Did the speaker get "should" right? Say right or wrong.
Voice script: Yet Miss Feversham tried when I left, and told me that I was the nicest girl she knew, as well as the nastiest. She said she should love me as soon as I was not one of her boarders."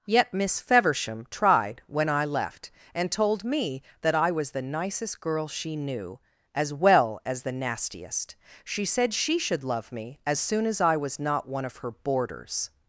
right